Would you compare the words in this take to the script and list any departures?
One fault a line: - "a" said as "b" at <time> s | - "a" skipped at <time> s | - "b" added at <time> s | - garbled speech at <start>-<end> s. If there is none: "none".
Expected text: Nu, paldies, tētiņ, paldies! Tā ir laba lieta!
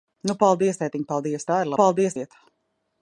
- "laba" said as "paldies" at 1.8 s